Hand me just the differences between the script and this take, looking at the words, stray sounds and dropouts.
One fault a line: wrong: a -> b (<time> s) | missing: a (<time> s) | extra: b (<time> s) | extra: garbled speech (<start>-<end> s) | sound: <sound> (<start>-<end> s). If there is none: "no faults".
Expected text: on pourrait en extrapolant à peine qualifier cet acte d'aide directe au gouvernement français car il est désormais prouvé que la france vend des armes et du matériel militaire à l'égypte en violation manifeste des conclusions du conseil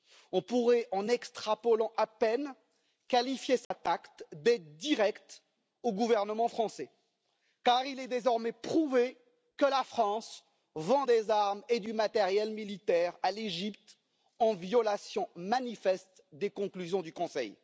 sound: dropout (3.6-3.7 s)